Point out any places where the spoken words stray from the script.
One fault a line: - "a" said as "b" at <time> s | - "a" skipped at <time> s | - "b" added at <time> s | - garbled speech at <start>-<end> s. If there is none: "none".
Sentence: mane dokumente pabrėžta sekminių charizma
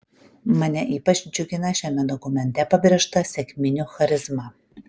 - "ypač džiugina šiame" added at 0.9 s